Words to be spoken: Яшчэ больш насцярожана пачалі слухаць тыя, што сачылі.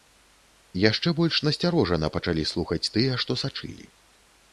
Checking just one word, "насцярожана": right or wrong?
right